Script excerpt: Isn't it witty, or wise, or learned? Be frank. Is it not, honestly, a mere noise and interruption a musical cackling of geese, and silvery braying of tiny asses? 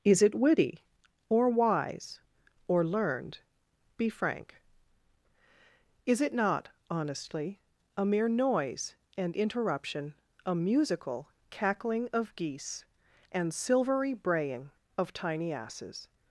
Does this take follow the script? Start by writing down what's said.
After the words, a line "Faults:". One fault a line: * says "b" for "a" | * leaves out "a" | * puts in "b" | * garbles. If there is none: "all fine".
Is it witty, or wise, or learned? Be frank. Is it not, honestly, a mere noise and interruption a musical cackling of geese, and silvery braying of tiny asses?
Faults:
* says "Is" for "Isn't"